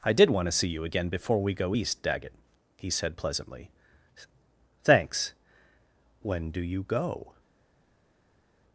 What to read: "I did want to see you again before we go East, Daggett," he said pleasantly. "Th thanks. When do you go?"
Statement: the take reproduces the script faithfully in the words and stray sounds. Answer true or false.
false